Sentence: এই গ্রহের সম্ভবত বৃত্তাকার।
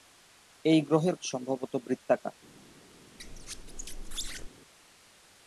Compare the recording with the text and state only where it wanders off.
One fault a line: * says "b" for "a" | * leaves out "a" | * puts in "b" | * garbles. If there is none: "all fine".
all fine